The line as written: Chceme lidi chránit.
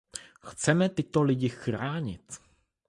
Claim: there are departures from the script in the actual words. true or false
true